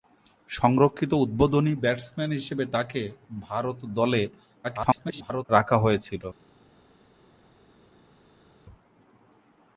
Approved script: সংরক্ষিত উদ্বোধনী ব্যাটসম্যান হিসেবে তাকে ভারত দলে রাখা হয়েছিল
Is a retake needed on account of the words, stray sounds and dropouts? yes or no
yes